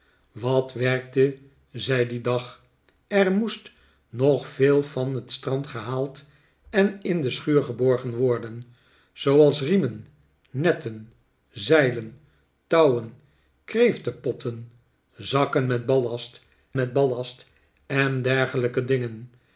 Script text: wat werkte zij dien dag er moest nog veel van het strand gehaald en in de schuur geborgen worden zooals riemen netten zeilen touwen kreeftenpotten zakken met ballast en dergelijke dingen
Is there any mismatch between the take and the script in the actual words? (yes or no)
yes